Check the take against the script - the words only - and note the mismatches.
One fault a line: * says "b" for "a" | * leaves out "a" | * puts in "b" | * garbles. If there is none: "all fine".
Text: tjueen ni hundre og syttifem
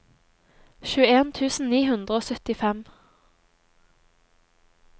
* puts in "tusen"